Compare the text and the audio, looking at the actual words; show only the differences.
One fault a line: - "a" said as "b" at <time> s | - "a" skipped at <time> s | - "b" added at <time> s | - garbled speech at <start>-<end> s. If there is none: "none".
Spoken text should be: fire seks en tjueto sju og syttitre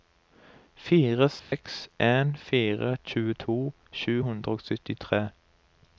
- "fire" added at 2.5 s
- "hundre" added at 4.3 s